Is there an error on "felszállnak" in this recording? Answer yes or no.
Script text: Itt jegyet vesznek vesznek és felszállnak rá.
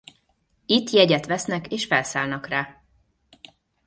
no